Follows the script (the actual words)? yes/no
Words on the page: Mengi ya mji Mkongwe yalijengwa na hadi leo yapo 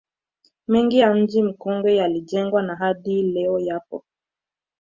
yes